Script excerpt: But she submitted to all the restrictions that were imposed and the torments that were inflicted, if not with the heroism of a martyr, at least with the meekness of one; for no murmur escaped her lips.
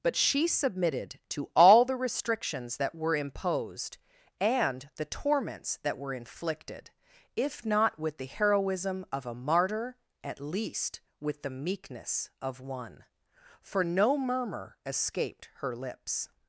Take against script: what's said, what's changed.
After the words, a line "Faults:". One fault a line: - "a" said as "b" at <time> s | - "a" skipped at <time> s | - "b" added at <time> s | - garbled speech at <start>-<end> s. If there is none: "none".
But she submitted to all the restrictions that were imposed and the torments that were inflicted, if not with the heroism of a martyr, at least with the meekness of one; for no murmur escaped her lips.
Faults:
none